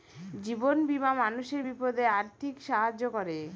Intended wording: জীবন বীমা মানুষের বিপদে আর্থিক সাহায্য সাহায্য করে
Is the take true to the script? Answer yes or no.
no